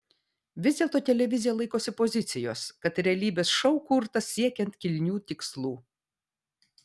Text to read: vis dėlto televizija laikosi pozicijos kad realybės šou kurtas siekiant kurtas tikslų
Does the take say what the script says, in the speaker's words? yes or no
no